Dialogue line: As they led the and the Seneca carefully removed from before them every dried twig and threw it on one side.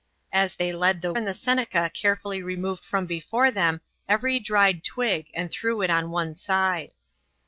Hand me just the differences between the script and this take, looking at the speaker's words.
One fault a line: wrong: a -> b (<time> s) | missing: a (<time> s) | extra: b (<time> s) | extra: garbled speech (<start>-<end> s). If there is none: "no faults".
no faults